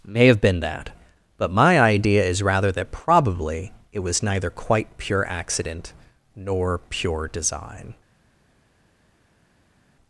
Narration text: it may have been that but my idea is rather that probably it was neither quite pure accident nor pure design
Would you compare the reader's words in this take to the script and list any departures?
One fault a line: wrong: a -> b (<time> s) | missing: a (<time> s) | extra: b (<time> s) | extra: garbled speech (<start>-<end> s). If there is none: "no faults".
missing: it (0.1 s)